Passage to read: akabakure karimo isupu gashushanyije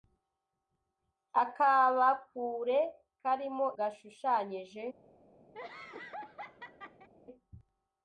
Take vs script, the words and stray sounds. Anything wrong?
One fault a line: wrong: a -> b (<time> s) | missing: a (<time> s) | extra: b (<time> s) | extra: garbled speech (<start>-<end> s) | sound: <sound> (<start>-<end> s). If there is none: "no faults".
missing: isupu (3.7 s)
sound: laugh (5.5-7.1 s)